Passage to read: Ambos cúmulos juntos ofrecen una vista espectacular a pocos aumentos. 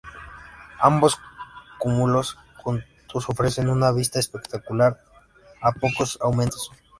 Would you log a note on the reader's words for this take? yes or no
no